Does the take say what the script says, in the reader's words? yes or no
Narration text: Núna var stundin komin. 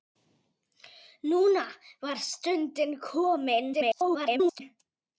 no